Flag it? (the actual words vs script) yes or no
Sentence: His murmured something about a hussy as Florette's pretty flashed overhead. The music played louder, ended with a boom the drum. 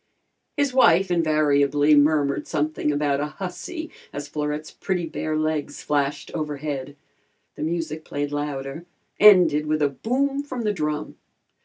yes